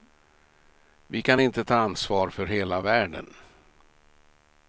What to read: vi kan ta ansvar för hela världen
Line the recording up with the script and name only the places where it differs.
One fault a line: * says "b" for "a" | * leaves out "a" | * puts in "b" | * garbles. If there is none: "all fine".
* puts in "inte"